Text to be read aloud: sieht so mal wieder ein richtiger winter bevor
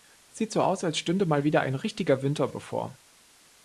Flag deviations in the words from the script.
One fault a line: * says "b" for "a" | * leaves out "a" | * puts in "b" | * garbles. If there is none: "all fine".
* puts in "aus als stünde"